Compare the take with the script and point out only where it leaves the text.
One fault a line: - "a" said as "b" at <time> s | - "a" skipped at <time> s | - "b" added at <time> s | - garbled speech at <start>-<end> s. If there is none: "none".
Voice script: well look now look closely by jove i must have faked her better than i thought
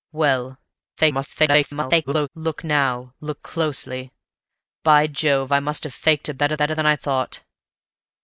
- garbled speech at 1.0-2.3 s
- "better" added at 6.5 s